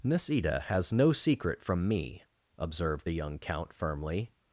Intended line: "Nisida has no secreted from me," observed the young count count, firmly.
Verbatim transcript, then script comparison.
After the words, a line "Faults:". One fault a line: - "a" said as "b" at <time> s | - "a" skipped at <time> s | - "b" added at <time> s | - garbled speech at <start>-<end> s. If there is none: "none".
"Nisida has no secret from me," observed the young count, firmly.
Faults:
- "secreted" said as "secret" at 1.1 s
- "count" skipped at 3.7 s